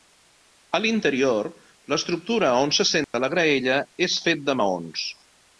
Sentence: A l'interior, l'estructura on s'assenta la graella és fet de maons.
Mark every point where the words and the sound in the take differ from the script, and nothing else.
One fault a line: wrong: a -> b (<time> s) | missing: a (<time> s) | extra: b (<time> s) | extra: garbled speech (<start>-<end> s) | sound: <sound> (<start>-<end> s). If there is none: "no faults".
sound: dropout (3.0-3.1 s)